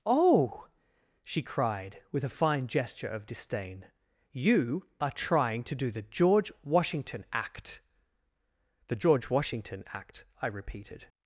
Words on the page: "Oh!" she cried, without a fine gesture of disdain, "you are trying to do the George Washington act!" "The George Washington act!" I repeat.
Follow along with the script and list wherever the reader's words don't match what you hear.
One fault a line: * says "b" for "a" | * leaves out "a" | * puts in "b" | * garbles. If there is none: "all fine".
* says "with" for "without"
* says "repeated" for "repeat"